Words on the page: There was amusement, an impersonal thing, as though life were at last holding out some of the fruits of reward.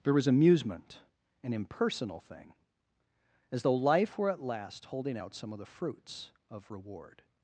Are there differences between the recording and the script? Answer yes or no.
no